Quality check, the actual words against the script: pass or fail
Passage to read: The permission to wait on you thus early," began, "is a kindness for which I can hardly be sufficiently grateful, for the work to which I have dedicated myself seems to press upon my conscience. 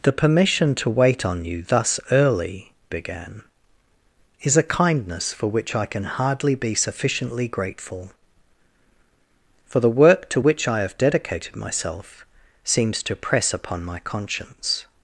pass